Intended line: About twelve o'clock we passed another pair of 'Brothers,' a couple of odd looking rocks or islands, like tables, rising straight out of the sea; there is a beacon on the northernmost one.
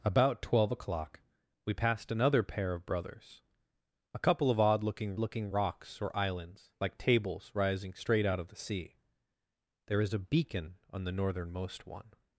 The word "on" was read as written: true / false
true